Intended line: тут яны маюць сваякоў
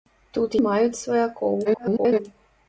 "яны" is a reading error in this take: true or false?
true